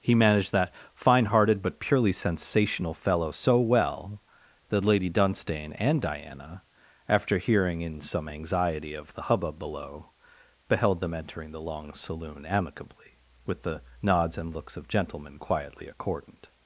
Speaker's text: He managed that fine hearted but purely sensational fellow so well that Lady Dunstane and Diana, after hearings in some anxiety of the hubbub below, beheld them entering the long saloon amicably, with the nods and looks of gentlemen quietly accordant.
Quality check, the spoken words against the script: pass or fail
fail